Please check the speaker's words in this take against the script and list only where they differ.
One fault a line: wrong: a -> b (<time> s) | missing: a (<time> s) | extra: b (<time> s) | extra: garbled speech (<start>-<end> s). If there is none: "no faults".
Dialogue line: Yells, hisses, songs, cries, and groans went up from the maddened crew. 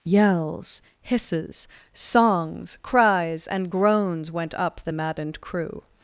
missing: from (4.8 s)